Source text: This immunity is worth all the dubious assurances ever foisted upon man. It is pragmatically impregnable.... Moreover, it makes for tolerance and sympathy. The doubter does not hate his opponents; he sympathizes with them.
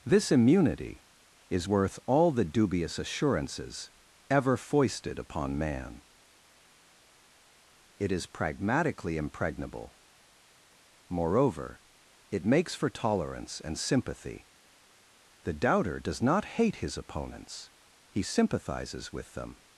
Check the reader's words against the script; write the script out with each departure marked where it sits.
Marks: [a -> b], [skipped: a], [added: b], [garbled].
This immunity is worth all the dubious assurances ever foisted upon man. It is pragmatically impregnable.... Moreover, it makes for tolerance and sympathy. The doubter does not hate his opponents; he sympathizes with them.